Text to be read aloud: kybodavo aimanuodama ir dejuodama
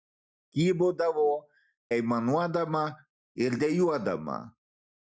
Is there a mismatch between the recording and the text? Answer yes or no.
no